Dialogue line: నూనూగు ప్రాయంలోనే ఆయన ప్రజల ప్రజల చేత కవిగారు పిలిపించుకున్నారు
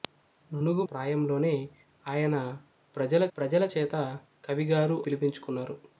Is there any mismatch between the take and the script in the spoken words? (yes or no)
no